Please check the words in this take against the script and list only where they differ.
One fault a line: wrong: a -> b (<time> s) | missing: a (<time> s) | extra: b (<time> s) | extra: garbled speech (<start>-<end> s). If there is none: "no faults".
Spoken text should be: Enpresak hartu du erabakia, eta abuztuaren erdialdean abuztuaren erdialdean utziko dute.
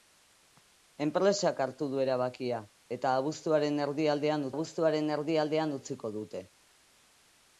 no faults